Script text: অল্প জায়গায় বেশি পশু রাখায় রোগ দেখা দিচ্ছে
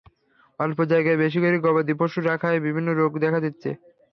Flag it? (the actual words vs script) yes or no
yes